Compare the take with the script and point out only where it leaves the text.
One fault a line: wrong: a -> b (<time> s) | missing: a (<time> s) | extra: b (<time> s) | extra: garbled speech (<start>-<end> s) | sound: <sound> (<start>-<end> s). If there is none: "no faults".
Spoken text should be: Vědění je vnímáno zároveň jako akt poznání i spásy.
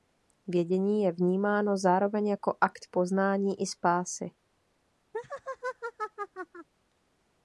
sound: laugh (5.1-6.7 s)